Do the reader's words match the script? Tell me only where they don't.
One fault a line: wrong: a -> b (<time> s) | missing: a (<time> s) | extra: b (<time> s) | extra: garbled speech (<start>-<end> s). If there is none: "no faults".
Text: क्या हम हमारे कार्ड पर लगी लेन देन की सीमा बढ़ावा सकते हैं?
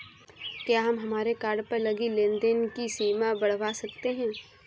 no faults